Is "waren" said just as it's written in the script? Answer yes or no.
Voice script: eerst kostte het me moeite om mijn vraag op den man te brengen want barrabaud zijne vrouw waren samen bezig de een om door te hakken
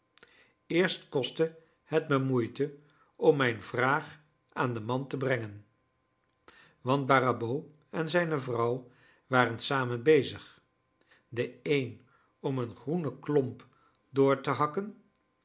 yes